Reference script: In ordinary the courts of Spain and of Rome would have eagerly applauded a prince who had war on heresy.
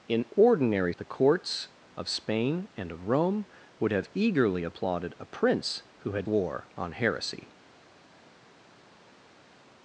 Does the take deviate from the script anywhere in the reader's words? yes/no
no